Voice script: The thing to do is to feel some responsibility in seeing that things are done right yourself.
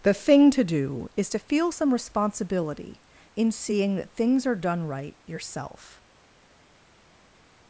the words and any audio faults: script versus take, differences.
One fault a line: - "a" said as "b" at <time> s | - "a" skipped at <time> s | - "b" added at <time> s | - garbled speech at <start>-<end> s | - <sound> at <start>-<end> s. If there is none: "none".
none